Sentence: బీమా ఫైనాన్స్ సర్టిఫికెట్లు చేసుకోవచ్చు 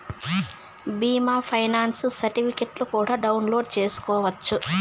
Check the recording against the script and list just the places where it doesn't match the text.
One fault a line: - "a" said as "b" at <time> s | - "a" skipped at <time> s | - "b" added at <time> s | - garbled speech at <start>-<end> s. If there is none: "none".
- "కూడా డౌన్లోడ్" added at 2.9 s